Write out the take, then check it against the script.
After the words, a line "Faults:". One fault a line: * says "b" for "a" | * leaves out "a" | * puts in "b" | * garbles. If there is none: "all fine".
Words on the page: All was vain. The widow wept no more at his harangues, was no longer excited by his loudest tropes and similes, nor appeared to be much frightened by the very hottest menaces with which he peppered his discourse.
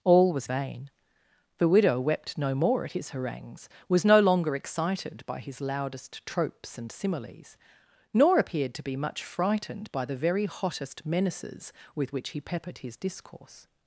All was vain. The widow wept no more at his harangues, was no longer excited by his loudest tropes and similes, nor appeared to be much frightened by the very hottest menaces with which he peppered his discourse.
Faults:
all fine